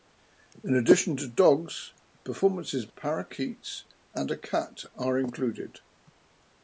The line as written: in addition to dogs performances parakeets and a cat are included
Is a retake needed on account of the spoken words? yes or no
no